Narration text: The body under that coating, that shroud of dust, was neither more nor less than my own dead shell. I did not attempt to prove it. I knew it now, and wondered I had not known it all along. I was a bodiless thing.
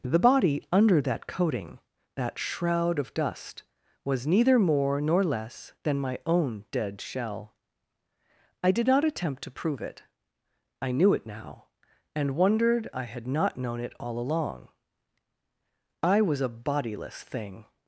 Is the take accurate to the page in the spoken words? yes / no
yes